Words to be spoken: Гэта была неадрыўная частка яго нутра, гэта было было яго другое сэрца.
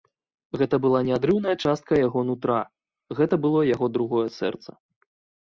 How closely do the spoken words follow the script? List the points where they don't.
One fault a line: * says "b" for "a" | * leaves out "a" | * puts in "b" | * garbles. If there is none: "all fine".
* leaves out "было"